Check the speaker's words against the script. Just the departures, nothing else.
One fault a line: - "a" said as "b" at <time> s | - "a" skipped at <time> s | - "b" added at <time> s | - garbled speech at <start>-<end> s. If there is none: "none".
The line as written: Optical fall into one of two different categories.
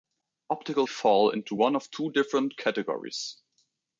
none